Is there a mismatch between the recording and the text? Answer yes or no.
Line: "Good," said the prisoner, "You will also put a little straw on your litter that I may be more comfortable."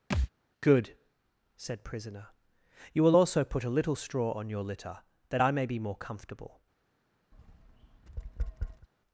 yes